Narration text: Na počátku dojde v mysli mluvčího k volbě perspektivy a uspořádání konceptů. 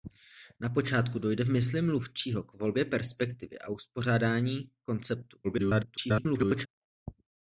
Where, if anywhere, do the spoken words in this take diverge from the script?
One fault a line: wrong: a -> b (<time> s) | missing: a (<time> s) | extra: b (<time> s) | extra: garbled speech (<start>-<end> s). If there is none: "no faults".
extra: garbled speech (5.4-6.7 s)